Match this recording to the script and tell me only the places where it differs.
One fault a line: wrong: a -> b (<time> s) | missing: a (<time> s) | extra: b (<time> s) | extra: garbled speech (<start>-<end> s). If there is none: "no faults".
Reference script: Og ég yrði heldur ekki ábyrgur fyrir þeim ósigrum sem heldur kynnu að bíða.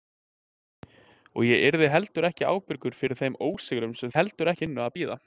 no faults